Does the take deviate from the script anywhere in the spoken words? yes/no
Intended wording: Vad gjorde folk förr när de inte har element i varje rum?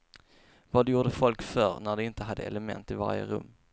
yes